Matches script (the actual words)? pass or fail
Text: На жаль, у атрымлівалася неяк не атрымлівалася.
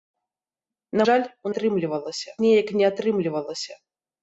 pass